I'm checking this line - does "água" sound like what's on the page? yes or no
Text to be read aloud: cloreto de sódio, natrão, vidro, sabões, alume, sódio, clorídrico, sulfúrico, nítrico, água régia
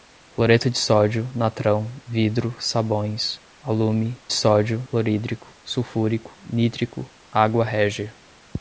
yes